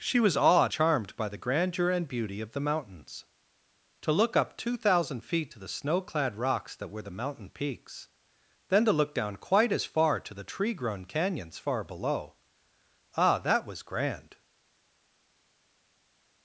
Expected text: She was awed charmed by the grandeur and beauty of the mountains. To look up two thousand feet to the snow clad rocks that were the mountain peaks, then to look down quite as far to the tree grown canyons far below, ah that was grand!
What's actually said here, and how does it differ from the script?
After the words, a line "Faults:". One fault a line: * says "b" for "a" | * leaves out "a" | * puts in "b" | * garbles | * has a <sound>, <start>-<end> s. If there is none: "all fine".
She was awed charmed by the grandeur and beauty of the mountains. To look up two thousand feet to the snow clad rocks that were the mountain peaks, then to look down quite as far to the tree grown canyons far below, ah that was grand!
Faults:
all fine